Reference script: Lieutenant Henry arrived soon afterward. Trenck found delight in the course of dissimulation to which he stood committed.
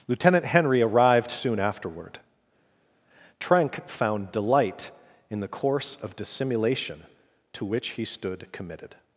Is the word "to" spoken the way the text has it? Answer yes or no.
yes